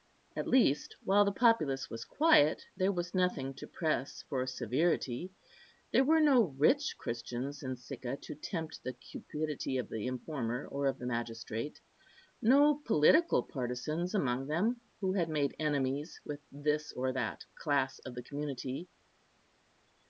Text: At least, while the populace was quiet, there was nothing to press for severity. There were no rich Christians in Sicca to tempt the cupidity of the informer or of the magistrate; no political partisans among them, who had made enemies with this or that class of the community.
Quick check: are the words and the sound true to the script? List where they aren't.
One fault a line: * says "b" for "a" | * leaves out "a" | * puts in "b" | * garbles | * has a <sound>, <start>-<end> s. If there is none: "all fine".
all fine